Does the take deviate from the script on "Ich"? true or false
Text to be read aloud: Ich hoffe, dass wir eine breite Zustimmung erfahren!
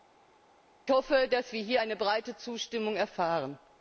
false